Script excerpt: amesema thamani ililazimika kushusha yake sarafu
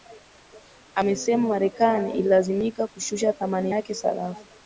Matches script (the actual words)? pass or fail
fail